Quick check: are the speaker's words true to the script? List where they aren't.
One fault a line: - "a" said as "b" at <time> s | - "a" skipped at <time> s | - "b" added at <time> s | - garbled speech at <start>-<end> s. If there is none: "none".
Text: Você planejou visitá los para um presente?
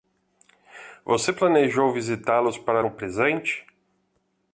none